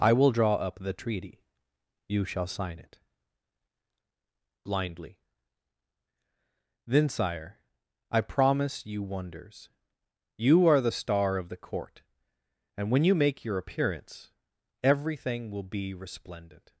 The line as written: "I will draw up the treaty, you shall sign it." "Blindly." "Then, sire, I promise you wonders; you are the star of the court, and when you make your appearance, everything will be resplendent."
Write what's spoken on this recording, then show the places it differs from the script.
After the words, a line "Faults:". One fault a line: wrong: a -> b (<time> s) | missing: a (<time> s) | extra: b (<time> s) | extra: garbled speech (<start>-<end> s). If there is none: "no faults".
"I will draw up the treaty, you shall sign it." "Blindly." "Then, sire, I promise you wonders; you are the star of the court, and when you make your appearance, everything will be resplendent."
Faults:
no faults